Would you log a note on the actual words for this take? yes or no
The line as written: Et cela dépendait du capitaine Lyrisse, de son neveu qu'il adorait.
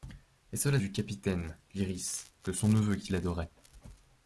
yes